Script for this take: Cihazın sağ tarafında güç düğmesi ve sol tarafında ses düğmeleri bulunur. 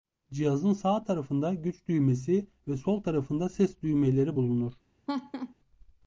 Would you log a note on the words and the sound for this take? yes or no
yes